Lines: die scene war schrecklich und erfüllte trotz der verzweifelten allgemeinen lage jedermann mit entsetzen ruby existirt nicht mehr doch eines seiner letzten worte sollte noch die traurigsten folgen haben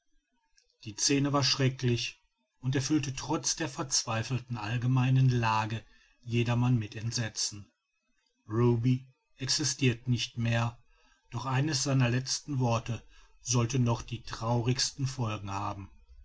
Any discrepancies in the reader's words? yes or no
no